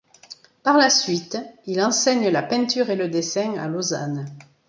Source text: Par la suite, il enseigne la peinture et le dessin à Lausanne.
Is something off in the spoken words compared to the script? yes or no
no